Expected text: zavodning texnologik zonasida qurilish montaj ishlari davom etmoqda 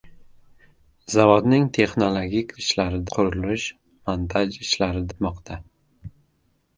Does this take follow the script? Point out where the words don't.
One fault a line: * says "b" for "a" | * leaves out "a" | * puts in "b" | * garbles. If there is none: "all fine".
* says "ishlari" for "zonasida"
* leaves out "davom"